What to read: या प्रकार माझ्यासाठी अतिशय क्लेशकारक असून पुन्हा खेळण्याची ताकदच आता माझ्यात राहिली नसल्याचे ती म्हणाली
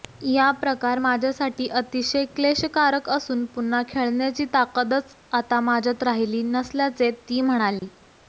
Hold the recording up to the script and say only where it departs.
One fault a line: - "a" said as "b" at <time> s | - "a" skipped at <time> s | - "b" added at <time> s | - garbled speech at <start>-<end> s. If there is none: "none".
none